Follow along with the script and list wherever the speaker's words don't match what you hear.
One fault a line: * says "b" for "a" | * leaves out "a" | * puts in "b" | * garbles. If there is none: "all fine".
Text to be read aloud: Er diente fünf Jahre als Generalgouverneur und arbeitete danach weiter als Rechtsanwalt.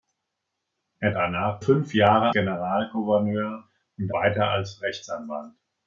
* says "danach" for "diente"
* leaves out "als"
* leaves out "arbeitete danach"